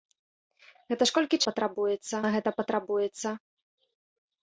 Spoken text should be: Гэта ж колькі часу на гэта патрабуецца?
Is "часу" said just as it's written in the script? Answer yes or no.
no